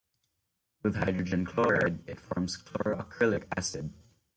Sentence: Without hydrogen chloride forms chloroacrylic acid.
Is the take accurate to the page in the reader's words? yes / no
no